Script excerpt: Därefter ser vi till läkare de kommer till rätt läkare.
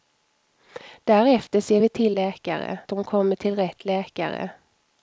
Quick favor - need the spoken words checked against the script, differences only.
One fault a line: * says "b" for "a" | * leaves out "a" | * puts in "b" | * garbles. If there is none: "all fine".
all fine